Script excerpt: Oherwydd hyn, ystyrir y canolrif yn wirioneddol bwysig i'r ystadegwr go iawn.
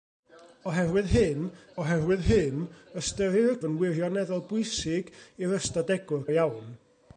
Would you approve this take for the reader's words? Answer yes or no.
no